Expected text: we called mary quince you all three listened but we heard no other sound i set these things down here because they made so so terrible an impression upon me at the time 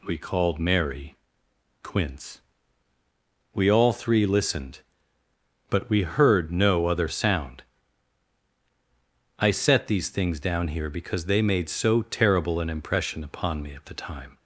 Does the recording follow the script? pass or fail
fail